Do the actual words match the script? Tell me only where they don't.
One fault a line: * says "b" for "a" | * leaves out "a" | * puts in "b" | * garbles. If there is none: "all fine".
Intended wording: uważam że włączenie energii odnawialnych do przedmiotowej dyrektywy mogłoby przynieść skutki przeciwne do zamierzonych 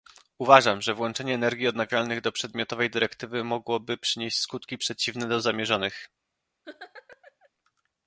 all fine